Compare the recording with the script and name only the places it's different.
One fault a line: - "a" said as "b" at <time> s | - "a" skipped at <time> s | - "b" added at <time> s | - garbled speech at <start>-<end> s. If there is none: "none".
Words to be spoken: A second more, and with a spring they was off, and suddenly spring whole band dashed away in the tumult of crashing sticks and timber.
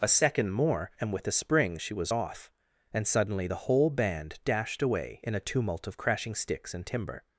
- "they" said as "she" at 1.8 s
- "spring" said as "the" at 3.4 s
- "the" said as "a" at 5.3 s